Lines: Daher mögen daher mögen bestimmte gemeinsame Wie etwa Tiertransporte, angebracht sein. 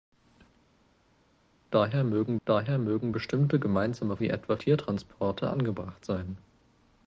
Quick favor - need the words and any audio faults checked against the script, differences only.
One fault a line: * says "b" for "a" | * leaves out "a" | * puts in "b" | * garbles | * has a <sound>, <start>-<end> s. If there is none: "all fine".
all fine